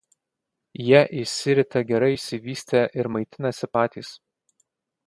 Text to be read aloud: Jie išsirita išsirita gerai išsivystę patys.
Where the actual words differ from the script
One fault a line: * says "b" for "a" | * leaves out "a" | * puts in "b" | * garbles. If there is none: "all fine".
* leaves out "išsirita"
* puts in "ir maitinasi"